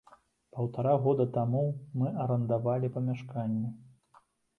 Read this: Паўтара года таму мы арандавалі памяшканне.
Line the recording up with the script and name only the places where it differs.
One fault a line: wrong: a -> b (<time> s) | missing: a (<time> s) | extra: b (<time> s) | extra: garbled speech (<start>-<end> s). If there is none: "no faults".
no faults